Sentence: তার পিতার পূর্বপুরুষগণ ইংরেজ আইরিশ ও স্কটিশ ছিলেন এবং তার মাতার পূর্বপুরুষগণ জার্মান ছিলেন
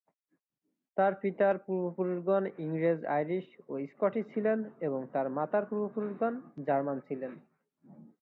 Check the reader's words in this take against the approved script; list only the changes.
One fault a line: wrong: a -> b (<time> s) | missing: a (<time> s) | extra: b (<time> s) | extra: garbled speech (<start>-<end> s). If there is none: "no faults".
no faults